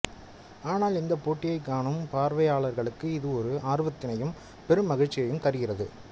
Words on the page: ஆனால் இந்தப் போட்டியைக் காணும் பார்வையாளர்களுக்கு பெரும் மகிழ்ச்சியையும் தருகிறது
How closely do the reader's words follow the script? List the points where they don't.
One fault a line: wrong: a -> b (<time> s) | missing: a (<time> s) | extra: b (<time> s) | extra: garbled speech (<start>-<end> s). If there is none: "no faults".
extra: இது ஒரு ஆர்வத்தினையும் (3.1 s)